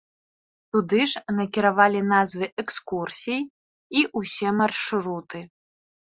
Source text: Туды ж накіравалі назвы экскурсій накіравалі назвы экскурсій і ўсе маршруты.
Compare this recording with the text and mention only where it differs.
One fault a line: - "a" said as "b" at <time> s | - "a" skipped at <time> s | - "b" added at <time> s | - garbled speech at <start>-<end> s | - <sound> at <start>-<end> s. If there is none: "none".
- "накіравалі назвы экскурсій" skipped at 3.4 s